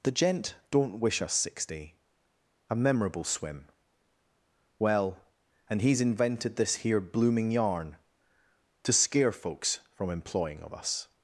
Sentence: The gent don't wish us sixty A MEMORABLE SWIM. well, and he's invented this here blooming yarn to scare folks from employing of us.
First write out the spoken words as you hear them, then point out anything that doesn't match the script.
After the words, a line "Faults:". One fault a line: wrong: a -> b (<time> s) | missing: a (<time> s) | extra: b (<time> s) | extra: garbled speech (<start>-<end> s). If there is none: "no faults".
The gent don't wish us sixty A MEMORABLE SWIM. well, and he's invented this here blooming yarn to scare folks from employing of us.
Faults:
no faults